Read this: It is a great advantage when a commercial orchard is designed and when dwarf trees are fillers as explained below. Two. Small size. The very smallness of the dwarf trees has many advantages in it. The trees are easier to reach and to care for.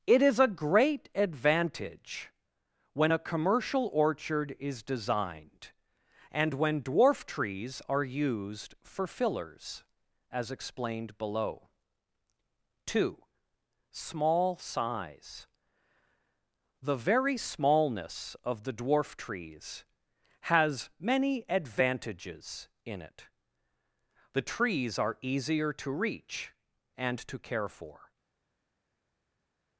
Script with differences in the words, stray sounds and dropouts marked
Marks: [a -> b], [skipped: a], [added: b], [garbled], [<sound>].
It is a great advantage when a commercial orchard is designed and when dwarf trees are [added: used for] fillers as explained below. Two. Small size. The very smallness of the dwarf trees has many advantages in it. The trees are easier to reach and to care for.